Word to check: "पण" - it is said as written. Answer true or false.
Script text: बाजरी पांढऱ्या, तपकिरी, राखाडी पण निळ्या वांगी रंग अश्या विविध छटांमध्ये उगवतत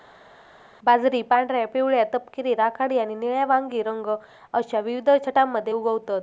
false